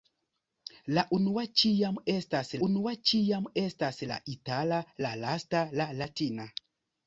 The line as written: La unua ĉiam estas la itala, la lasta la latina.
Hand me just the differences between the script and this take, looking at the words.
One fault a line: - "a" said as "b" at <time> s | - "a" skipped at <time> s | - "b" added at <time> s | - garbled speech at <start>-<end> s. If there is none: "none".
- "unua ĉiam estas" added at 2.7 s